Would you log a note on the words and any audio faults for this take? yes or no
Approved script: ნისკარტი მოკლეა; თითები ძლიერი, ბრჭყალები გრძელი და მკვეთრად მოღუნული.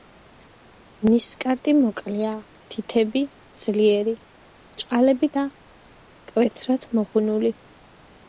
yes